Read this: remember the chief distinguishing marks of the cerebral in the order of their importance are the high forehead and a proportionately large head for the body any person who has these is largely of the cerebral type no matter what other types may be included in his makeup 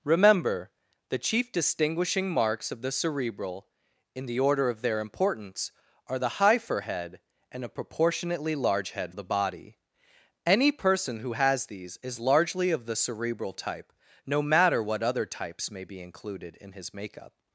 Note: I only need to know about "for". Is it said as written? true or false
false